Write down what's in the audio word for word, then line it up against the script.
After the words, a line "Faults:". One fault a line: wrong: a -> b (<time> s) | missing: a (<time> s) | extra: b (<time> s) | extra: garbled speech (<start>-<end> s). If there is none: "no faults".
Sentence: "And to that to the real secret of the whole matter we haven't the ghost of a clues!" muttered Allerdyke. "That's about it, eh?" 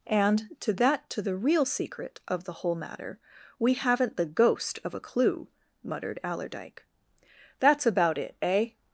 "And to that to the real secret of the whole matter we haven't the ghost of a clue!" muttered Allerdyke. "That's about it, eh?"
Faults:
wrong: clues -> clue (5.0 s)